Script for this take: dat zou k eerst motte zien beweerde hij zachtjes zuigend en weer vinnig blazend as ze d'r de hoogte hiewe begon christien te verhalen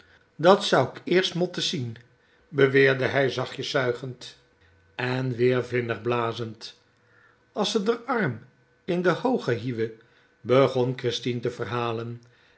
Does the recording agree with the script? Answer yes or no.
no